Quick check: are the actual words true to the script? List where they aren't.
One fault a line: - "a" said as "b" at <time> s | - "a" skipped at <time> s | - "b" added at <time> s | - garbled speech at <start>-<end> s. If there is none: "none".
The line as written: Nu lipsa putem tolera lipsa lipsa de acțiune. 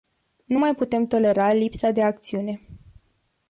- "lipsa" said as "mai" at 0.6 s
- "lipsa" skipped at 1.9 s